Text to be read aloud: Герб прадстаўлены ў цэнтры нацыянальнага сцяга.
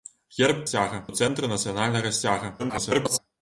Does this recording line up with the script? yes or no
no